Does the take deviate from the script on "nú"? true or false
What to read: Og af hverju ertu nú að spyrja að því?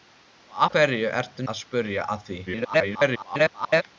true